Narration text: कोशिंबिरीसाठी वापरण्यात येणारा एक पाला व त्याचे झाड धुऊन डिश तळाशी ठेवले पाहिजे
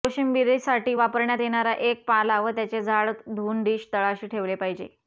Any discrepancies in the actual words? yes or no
no